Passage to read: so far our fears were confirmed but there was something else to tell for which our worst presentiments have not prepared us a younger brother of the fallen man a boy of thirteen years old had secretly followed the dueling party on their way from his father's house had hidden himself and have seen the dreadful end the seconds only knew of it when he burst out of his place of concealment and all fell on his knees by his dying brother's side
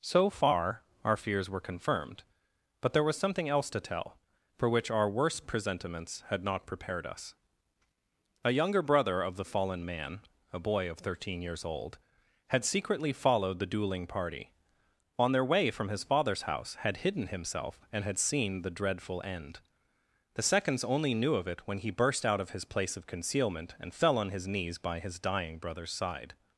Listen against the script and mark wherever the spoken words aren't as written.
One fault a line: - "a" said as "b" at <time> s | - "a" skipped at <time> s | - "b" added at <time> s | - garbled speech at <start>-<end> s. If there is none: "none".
- "have" said as "had" at 6.3 s
- "have" said as "had" at 18.0 s
- "all" skipped at 23.9 s